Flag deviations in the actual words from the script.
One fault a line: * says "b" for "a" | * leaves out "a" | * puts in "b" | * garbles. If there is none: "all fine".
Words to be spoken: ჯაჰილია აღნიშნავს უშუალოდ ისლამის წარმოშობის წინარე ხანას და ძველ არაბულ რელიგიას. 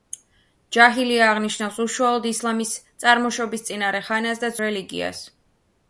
* leaves out "ძველ არაბულ"